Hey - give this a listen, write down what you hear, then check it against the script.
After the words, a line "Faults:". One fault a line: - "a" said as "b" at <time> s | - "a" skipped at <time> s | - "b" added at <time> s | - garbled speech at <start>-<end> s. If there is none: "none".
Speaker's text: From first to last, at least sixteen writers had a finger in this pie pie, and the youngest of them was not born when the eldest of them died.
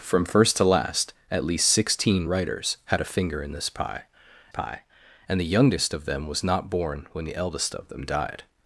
From first to last, at least sixteen writers had a finger in this pie pie, and the youngest of them was not born when the eldest of them died.
Faults:
none